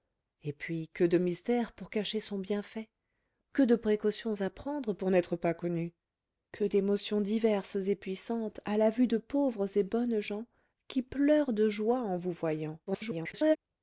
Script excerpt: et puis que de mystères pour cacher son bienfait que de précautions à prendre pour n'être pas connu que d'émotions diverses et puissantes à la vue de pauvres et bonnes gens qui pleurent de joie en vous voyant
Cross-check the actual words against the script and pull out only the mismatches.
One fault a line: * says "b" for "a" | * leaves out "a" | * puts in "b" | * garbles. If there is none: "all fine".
* garbles